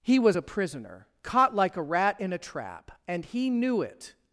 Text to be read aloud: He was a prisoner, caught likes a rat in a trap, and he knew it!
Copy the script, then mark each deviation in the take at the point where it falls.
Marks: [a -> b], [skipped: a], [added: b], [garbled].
He was a prisoner, caught [likes -> like] a rat in a trap, and he knew it!